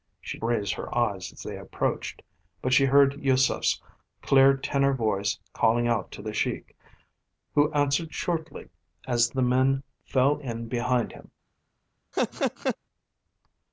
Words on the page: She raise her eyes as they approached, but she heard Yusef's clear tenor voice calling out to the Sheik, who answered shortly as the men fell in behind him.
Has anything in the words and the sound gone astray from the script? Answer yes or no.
yes